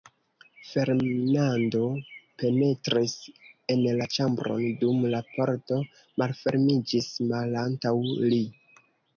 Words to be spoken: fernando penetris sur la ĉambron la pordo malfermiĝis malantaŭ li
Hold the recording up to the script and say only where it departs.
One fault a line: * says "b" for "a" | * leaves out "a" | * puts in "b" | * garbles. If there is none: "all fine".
* says "en" for "sur"
* puts in "dum"